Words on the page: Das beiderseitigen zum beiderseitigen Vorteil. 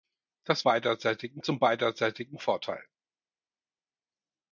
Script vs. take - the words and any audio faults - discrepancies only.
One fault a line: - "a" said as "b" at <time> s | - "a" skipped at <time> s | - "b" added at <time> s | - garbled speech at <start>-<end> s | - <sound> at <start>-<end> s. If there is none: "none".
none